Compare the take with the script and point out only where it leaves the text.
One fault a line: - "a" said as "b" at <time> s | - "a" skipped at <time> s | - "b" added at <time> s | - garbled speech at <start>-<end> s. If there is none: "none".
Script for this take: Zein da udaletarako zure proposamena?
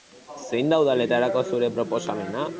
none